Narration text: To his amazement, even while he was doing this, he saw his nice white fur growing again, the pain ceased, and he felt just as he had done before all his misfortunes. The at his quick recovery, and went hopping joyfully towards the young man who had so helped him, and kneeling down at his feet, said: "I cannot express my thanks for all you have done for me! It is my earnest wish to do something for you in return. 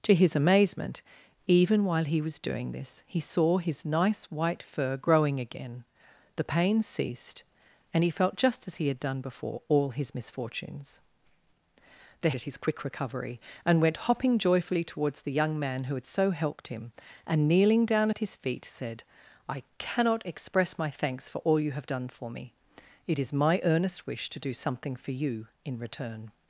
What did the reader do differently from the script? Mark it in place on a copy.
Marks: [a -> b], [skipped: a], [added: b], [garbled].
To his amazement, even while he was doing this, he saw his nice white fur growing again, the pain ceased, and he felt just as he had done before all his misfortunes. The at his quick recovery, and went hopping joyfully towards the young man who had so helped him, and kneeling down at his feet, said: "I cannot express my thanks for all you have done for me! It is my earnest wish to do something for you in return.